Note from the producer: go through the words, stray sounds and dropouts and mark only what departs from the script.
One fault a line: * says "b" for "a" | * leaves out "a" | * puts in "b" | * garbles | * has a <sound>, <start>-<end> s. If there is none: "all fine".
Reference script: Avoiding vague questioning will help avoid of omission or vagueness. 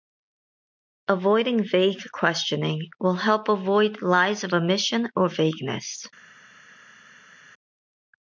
* puts in "lies"